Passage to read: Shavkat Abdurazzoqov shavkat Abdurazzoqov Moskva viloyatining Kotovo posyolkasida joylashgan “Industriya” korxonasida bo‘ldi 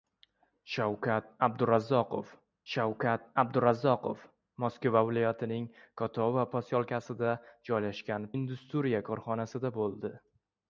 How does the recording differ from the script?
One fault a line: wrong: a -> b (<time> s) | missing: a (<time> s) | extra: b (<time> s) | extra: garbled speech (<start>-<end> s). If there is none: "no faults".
no faults